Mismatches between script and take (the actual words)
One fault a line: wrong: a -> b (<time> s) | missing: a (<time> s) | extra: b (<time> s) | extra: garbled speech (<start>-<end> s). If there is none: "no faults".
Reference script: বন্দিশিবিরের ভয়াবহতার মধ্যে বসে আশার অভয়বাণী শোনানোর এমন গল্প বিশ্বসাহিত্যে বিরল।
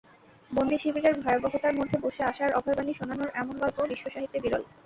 no faults